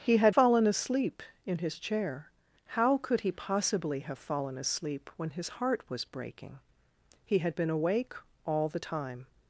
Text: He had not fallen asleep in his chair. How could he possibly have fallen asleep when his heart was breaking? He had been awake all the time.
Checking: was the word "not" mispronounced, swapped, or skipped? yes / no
yes